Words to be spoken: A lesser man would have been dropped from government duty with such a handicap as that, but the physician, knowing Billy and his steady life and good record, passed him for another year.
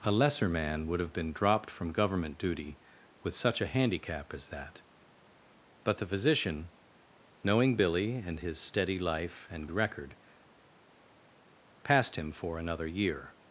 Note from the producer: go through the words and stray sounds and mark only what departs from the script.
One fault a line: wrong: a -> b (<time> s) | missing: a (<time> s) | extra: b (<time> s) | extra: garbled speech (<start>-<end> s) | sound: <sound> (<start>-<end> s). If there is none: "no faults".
missing: good (9.7 s)